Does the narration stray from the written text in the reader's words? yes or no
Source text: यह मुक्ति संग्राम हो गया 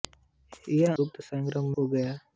no